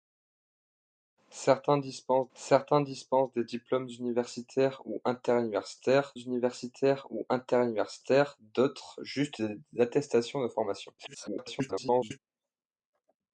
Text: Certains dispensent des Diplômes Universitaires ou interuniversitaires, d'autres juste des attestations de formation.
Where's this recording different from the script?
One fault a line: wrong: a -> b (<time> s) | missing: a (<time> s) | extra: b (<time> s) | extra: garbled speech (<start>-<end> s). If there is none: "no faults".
extra: certains dispensent (2.3 s)
extra: Universitaires ou interuniversitaires (6.2 s)
extra: garbled speech (11.0-12.2 s)